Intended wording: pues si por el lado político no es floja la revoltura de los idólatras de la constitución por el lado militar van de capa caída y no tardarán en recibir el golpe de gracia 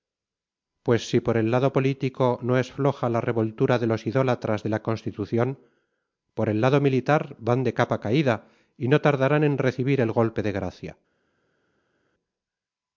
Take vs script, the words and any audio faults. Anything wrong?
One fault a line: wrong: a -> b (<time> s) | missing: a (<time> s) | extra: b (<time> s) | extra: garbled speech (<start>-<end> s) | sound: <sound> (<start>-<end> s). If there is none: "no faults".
no faults